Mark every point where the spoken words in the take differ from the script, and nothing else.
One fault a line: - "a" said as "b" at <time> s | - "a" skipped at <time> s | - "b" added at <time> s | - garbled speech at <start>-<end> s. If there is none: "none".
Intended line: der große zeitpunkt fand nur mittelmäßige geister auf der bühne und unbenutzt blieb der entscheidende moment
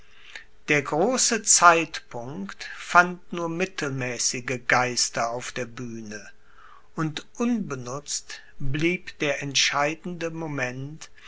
none